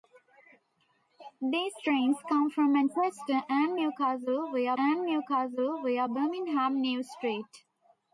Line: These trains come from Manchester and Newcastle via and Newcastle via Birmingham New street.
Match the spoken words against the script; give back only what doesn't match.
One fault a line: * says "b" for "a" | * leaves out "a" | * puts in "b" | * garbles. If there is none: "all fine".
all fine